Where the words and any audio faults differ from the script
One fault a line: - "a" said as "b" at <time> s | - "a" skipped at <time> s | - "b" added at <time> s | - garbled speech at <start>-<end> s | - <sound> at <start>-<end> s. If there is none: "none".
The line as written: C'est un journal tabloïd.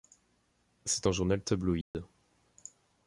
- dropout at 1.8-1.9 s